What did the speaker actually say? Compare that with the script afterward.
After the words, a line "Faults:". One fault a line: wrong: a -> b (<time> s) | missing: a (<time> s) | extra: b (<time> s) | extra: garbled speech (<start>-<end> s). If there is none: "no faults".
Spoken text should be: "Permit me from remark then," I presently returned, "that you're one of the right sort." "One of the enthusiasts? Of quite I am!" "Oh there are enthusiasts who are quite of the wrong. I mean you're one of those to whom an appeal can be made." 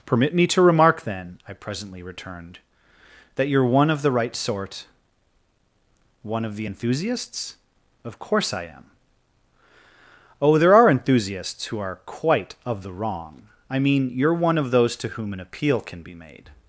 "Permit me to remark then," I presently returned, "that you're one of the right sort." "One of the enthusiasts? Of course I am!" "Oh there are enthusiasts who are quite of the wrong. I mean you're one of those to whom an appeal can be made."
Faults:
wrong: from -> to (0.5 s)
wrong: quite -> course (8.2 s)